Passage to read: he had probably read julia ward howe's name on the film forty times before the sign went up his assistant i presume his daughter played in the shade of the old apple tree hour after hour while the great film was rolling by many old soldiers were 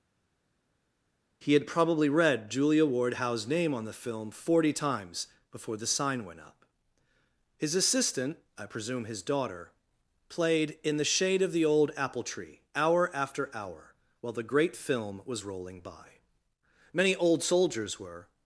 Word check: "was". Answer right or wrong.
right